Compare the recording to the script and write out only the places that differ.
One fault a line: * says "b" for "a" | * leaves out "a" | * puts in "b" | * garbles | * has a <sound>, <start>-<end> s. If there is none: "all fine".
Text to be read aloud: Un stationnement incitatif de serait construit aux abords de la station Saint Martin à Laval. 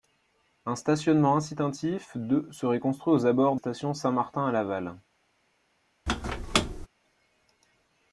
* leaves out "de la"
* has a squeak, 6.1-6.9 s